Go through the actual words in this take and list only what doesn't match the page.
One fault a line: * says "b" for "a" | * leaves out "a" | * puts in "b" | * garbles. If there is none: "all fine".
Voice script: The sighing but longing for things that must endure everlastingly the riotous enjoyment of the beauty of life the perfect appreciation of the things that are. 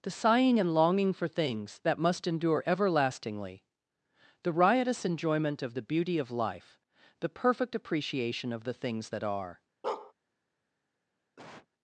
* says "and" for "but"